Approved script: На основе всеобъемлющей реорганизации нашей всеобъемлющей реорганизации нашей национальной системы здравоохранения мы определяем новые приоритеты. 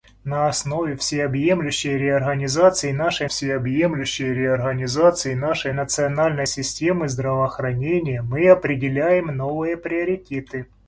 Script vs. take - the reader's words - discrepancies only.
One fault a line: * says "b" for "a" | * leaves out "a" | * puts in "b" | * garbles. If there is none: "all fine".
all fine